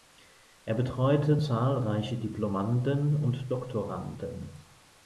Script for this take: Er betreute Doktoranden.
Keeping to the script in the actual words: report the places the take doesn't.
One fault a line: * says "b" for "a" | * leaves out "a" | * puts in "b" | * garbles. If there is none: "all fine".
* puts in "zahlreiche Diplomanden und"